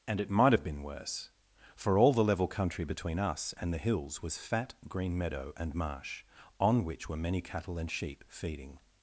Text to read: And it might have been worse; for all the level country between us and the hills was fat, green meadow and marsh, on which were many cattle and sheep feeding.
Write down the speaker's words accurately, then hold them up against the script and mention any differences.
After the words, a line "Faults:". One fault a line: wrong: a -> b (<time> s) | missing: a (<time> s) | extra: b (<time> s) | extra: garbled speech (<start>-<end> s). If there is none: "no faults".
And it might have been worse; for all the level country between us and the hills was fat, green meadow and marsh, on which were many cattle and sheep feeding.
Faults:
no faults